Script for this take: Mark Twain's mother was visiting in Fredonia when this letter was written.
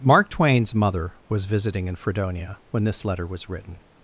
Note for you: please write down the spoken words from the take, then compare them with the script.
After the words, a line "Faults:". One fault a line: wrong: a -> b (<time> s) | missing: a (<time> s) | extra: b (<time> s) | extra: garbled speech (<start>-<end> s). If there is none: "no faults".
Mark Twain's mother was visiting in Fredonia when this letter was written.
Faults:
no faults